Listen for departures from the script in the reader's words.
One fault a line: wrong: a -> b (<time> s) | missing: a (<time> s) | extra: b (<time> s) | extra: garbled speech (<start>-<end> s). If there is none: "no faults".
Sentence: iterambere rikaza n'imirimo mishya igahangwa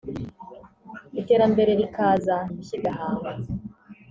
missing: n'imirimo (2.4 s)